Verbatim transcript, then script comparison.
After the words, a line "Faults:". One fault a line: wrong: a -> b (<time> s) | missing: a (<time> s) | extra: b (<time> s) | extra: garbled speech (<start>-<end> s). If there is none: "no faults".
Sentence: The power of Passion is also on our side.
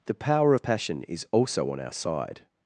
The power of Passion is also on our side.
Faults:
no faults